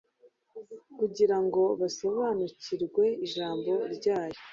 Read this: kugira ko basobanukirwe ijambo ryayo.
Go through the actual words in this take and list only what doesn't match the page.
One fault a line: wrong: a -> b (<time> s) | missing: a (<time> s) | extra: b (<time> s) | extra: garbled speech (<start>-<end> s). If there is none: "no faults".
wrong: ko -> ngo (1.4 s)